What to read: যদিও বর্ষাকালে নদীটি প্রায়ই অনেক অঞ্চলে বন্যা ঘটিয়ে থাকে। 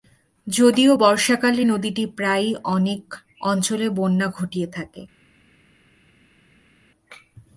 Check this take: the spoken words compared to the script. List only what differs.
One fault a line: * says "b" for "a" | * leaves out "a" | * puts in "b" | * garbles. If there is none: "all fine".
all fine